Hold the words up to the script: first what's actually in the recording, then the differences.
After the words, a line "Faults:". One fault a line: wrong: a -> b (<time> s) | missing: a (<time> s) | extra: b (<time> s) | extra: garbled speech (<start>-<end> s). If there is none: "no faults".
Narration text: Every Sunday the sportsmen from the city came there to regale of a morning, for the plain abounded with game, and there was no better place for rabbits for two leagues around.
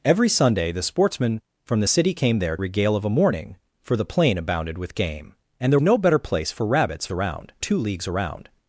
Every Sunday the sportsmen from the city came there regale of a morning, for the plain abounded with game, and there no better place for rabbits around two leagues around.
Faults:
missing: to (2.5 s)
missing: was (5.8 s)
wrong: for -> around (7.1 s)